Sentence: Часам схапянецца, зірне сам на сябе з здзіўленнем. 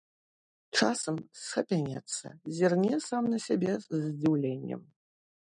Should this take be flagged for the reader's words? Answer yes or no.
no